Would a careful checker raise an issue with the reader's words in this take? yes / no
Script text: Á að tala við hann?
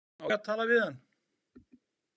no